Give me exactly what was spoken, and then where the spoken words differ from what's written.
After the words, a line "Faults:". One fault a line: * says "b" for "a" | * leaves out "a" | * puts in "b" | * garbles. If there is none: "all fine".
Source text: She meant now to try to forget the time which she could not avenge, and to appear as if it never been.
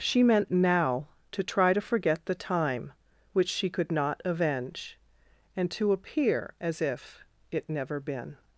She meant now to try to forget the time which she could not avenge, and to appear as if it never been.
Faults:
all fine